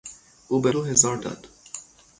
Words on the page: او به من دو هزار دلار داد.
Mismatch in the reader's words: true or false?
true